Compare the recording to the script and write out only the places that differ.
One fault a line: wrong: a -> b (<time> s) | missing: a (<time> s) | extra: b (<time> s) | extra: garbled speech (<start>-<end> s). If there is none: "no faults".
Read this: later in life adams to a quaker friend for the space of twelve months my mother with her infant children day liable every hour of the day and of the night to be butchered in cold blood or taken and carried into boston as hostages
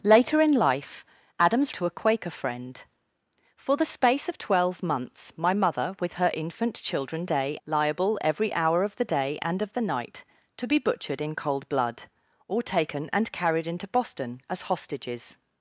no faults